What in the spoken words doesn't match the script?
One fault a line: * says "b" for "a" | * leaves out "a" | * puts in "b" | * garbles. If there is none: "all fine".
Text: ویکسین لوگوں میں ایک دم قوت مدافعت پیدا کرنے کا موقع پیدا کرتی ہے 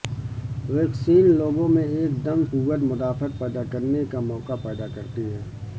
all fine